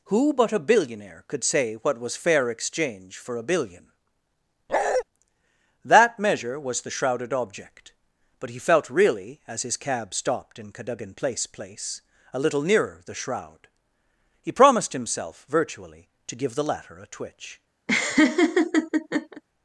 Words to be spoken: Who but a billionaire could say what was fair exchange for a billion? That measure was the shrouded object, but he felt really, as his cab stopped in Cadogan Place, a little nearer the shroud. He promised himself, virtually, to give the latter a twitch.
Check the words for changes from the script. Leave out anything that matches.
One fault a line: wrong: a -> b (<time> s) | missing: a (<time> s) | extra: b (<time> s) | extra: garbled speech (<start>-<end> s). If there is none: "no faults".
extra: Place (11.5 s)